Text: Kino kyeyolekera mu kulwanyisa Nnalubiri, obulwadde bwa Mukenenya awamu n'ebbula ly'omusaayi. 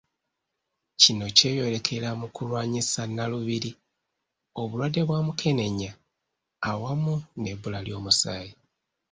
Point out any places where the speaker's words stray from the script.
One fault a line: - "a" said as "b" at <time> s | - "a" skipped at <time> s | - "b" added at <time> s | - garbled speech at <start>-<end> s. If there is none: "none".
none